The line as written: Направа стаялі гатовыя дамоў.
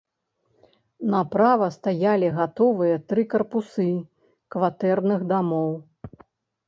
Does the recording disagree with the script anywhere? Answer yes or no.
yes